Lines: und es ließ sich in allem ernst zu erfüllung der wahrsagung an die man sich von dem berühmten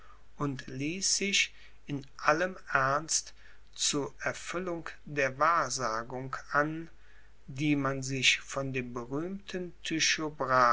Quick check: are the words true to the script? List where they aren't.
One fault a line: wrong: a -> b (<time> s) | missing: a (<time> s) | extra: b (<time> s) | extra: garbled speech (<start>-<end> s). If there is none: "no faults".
missing: es (0.7 s)